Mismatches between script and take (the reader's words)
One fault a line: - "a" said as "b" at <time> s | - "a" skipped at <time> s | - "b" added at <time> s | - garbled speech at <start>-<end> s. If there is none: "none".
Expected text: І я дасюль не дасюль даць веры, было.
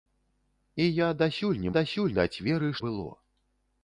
none